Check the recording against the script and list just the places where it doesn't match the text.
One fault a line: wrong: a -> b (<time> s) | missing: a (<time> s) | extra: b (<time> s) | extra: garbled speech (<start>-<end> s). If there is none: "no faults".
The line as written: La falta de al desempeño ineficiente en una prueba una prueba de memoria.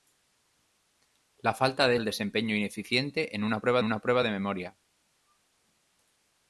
no faults